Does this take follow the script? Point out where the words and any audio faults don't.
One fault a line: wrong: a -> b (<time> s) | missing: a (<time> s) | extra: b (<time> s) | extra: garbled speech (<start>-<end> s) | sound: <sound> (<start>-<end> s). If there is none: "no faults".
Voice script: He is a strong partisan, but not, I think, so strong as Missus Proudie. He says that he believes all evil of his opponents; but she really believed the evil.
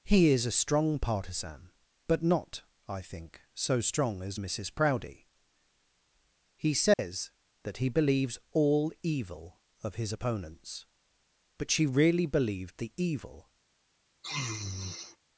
sound: dropout (6.9-7.0 s)
sound: sniff (14.2-15.2 s)